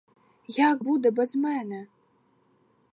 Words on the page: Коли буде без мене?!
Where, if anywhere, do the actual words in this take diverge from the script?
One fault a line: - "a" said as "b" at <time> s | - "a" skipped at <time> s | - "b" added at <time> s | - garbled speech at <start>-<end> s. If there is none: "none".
- "Коли" said as "Як" at 0.5 s